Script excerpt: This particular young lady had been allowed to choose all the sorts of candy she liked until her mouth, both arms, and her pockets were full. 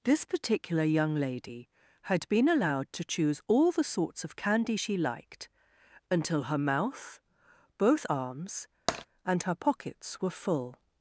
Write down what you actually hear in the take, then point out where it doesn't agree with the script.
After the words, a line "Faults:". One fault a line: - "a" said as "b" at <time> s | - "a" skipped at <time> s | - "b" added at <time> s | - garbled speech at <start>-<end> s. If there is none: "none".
This particular young lady had been allowed to choose all the sorts of candy she liked until her mouth, both arms, and her pockets were full.
Faults:
none